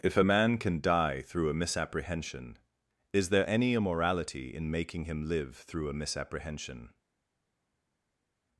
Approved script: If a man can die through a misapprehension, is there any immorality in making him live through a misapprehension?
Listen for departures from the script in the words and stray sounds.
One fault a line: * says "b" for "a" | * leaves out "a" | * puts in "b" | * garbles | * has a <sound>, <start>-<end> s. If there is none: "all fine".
all fine